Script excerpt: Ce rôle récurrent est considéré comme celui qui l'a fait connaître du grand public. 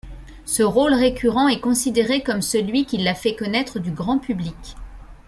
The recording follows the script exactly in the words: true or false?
true